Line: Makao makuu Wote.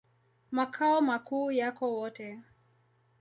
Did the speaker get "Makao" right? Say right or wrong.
right